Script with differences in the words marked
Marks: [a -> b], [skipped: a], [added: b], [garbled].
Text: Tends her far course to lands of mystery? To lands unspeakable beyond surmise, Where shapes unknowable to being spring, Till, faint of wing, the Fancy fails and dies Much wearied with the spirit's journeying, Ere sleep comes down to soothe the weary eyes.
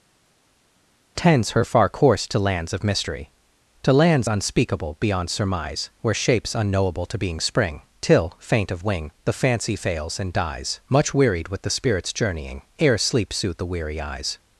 Tends her far course to lands of mystery? To lands unspeakable beyond surmise, Where shapes unknowable to being spring, Till, faint of wing, the Fancy fails and dies Much wearied with the spirit's journeying, Ere sleep [skipped: comes down to] soothe the weary eyes.